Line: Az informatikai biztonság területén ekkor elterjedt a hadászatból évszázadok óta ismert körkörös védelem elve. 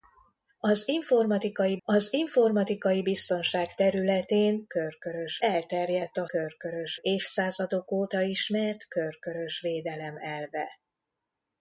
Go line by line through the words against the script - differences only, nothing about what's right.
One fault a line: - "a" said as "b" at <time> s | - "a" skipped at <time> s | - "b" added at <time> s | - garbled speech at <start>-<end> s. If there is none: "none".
- "az informatikai" added at 1.8 s
- "ekkor" said as "körkörös" at 4.7 s
- "hadászatból" said as "körkörös" at 6.3 s